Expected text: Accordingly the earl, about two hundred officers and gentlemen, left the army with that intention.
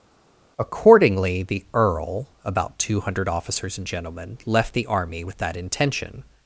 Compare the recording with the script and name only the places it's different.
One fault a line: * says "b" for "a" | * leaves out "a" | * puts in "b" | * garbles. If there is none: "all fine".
all fine